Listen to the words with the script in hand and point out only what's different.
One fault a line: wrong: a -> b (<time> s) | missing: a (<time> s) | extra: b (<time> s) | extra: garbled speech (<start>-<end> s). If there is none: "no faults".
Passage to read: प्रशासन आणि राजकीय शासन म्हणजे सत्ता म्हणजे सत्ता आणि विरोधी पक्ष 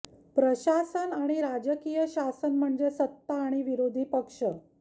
missing: म्हणजे सत्ता (3.4 s)